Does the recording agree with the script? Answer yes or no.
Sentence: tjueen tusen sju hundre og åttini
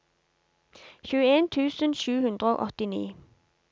yes